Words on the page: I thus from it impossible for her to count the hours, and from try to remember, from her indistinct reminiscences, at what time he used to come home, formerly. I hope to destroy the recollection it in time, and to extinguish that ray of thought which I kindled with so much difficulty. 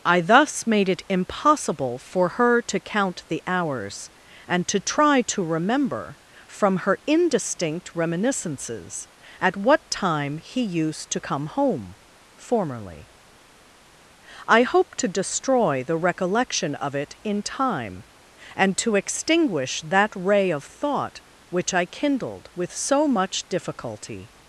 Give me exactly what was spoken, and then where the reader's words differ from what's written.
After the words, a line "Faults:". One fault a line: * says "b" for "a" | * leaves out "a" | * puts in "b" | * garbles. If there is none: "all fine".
I thus made it impossible for her to count the hours, and to try to remember, from her indistinct reminiscences, at what time he used to come home, formerly. I hope to destroy the recollection of it in time, and to extinguish that ray of thought which I kindled with so much difficulty.
Faults:
* says "made" for "from"
* says "to" for "from"
* puts in "of"